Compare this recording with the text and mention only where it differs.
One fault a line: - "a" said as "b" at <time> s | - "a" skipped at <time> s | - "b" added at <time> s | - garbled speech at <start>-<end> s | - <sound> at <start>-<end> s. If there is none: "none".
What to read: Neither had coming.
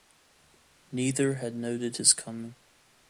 - "noted his" added at 1.6 s